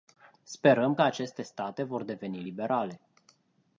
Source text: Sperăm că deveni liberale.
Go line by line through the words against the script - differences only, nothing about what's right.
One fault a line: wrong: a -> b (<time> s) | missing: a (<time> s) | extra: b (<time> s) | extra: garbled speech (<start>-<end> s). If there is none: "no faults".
extra: aceste state vor (1.0 s)